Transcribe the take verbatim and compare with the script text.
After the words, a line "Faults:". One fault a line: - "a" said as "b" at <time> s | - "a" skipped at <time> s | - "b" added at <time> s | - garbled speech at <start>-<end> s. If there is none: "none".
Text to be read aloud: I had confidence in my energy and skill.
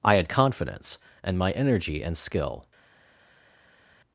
I had confidence and my energy and skill.
Faults:
- "in" said as "and" at 1.2 s